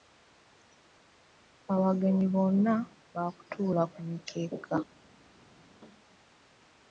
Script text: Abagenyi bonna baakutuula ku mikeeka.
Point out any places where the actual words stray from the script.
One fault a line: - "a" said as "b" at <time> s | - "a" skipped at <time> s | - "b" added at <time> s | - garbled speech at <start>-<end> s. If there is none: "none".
none